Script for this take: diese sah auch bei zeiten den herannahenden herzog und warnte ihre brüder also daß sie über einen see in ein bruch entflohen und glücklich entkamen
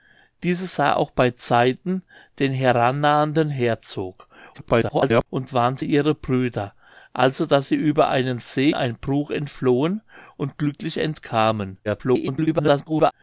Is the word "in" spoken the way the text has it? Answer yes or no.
no